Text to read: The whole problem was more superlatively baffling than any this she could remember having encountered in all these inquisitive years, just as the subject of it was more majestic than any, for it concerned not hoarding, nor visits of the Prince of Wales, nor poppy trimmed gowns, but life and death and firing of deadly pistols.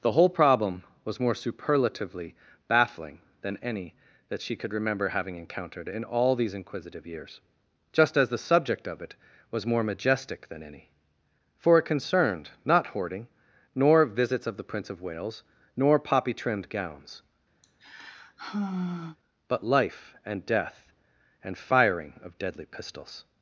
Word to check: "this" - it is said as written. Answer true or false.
false